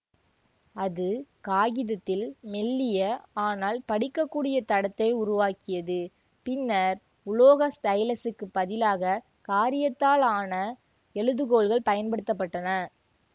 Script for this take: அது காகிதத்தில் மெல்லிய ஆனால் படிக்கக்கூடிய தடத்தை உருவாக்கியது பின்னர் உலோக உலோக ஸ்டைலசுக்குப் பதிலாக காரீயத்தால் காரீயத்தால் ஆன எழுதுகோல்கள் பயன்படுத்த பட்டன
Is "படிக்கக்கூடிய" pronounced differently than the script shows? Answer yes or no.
no